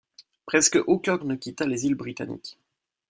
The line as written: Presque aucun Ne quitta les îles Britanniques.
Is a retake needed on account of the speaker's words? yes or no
no